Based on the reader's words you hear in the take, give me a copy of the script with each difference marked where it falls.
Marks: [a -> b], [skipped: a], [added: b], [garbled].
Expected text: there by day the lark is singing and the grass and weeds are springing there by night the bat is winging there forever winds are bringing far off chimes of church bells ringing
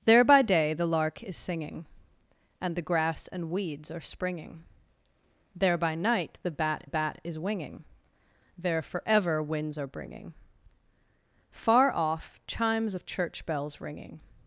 there by day the lark is singing and the grass and weeds are springing there by night the bat [added: bat] is winging there forever winds are bringing far off chimes of church bells ringing